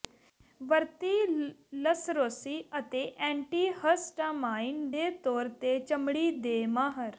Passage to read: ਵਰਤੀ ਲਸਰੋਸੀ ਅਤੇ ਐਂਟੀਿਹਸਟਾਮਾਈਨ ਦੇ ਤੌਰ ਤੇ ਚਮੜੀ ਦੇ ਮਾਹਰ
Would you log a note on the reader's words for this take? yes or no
no